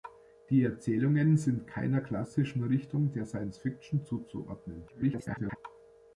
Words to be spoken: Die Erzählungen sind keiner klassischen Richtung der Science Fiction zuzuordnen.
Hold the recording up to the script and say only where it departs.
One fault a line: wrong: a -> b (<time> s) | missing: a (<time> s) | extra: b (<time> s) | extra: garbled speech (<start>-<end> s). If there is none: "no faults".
extra: garbled speech (4.9-5.6 s)